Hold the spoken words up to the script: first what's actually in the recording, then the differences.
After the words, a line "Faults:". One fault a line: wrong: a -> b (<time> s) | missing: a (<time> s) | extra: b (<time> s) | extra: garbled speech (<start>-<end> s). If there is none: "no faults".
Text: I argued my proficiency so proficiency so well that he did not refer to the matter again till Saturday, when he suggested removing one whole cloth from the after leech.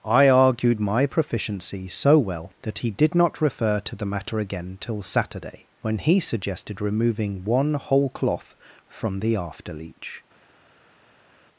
I argued my proficiency so well that he did not refer to the matter again till Saturday, when he suggested removing one whole cloth from the after leech.
Faults:
missing: proficiency so (2.2 s)